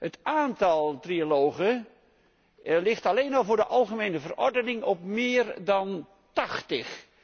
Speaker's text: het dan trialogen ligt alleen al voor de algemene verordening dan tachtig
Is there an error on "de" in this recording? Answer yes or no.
no